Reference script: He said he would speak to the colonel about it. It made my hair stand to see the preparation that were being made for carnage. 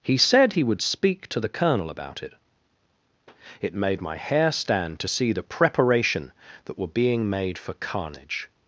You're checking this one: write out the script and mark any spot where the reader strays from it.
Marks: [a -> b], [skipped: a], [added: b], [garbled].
He said he would speak to the colonel about it. It made my hair stand to see the preparation that were being made for carnage.